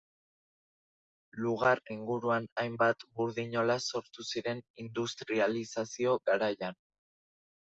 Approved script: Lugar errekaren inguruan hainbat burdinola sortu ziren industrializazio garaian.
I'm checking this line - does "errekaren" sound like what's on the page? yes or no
no